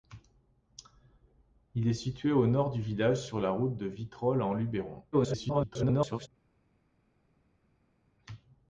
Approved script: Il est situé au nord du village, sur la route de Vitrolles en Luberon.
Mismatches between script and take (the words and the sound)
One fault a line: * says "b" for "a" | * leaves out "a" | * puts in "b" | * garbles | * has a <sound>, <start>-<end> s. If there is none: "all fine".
* garbles